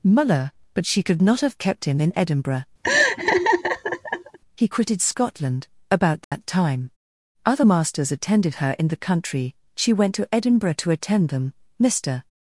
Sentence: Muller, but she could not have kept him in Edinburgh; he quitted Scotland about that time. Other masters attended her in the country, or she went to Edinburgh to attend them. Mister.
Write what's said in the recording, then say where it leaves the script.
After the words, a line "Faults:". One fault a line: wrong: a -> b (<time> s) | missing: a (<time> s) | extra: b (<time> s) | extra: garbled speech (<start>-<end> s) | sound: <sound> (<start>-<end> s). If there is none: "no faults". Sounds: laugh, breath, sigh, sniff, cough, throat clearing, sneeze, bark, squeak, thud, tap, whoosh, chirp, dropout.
Muller, but she could not have kept him in Edinburgh; he quitted Scotland about that time. Other masters attended her in the country, she went to Edinburgh to attend them. Mister.
Faults:
sound: laugh (2.8-4.4 s)
sound: dropout (6.2-6.3 s)
missing: or (9.5 s)